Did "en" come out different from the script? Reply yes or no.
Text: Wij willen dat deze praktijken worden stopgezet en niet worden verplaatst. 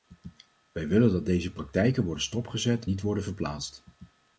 yes